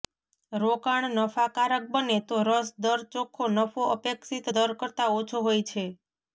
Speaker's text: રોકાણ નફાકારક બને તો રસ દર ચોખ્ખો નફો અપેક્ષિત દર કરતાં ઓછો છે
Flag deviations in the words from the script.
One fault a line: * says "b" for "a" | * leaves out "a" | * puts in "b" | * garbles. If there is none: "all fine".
* puts in "હોય"